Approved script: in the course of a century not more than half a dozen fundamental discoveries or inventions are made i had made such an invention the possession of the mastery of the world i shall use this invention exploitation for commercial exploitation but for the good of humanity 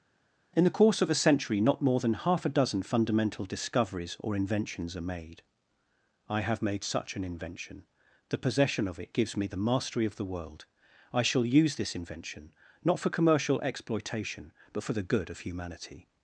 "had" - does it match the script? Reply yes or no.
no